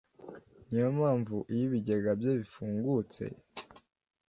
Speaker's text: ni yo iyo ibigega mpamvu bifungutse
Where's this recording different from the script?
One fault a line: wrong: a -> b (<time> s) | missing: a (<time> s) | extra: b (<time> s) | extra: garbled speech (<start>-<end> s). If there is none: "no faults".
extra: mpamvu (1.0 s)
wrong: mpamvu -> bye (2.2 s)